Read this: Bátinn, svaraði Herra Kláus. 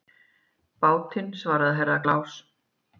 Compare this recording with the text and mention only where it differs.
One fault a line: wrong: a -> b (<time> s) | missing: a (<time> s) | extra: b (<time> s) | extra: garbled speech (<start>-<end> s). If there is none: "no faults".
no faults